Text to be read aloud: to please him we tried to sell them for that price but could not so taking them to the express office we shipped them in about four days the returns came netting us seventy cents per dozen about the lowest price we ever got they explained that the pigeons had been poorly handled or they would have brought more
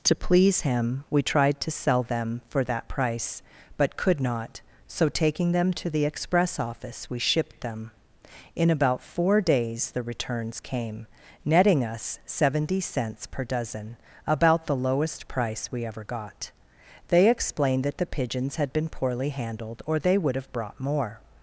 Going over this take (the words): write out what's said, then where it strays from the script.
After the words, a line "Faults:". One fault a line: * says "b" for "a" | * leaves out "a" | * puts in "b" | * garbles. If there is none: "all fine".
to please him we tried to sell them for that price but could not so taking them to the express office we shipped them in about four days the returns came netting us seventy cents per dozen about the lowest price we ever got they explained that the pigeons had been poorly handled or they would have brought more
Faults:
all fine